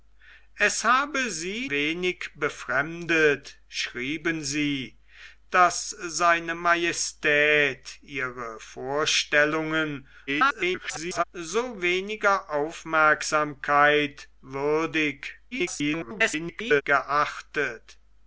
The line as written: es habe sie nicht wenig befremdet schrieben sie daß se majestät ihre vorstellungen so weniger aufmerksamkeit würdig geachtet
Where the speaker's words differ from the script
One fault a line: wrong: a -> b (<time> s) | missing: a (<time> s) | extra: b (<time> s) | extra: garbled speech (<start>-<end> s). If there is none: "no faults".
missing: nicht (1.7 s)
extra: garbled speech (10.3-11.2 s)
extra: garbled speech (15.5-16.8 s)